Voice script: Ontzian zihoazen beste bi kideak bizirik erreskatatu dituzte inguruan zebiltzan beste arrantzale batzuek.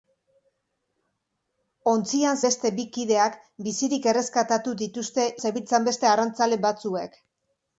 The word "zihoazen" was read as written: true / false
false